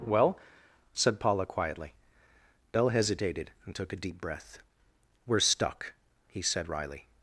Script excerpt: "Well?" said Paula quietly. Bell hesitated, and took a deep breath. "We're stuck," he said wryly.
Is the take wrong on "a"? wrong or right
right